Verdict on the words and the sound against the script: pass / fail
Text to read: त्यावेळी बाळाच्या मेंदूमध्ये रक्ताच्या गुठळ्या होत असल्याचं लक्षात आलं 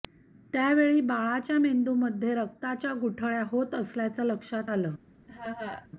fail